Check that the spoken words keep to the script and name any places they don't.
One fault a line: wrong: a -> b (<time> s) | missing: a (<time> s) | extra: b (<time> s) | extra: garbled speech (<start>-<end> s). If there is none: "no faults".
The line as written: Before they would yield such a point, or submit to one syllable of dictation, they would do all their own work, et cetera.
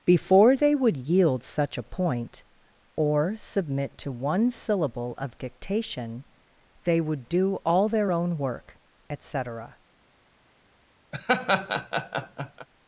no faults